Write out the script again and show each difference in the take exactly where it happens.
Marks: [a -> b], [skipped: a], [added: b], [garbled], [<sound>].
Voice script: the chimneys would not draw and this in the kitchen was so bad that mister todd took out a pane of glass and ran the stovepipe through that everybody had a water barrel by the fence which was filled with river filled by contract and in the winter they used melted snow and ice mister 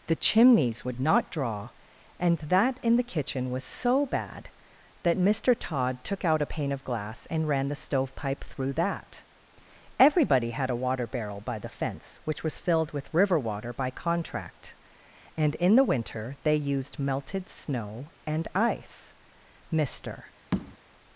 the chimneys would not draw and [this -> that] in the kitchen was so bad that mister todd took out a pane of glass and ran the stovepipe through that everybody had a water barrel by the fence which was filled with river [filled -> water] by contract and in the winter they used melted snow and ice mister [tap]